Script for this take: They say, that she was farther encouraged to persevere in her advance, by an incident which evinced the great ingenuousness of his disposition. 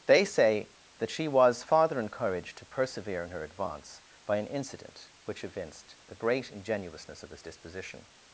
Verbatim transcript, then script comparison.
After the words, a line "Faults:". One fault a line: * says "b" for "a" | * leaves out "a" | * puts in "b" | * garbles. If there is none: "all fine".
They say, that she was farther encouraged to persevere in her advance, by an incident which evinced the great ingenuousness of his disposition.
Faults:
all fine